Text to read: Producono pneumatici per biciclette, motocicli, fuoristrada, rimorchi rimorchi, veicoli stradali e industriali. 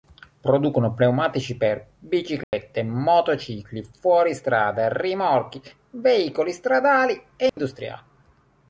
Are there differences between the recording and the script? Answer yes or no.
yes